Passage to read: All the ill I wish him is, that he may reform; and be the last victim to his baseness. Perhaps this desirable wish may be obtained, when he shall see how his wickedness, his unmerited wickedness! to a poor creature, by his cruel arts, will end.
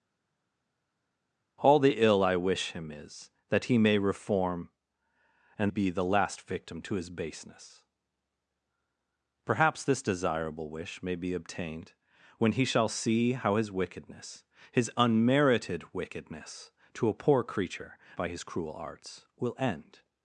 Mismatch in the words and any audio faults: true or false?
false